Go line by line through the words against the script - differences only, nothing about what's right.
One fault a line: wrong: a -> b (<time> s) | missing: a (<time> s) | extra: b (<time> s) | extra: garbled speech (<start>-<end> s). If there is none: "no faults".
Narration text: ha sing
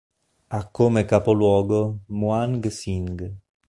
extra: come capoluogo muang (0.7 s)